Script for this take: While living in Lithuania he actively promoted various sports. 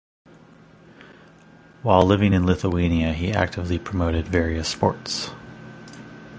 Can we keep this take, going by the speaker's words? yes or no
yes